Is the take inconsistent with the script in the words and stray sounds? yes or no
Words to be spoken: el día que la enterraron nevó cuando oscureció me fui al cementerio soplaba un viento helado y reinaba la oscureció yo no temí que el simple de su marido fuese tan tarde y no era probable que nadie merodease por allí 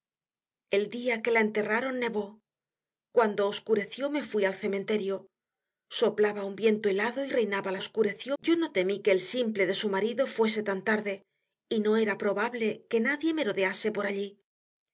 no